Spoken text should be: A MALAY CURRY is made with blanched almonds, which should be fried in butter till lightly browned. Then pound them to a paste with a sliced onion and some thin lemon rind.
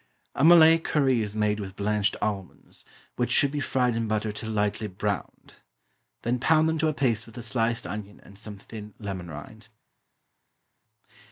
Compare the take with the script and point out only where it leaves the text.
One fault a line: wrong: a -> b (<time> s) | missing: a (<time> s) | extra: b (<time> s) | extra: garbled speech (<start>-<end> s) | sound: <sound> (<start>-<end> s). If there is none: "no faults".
no faults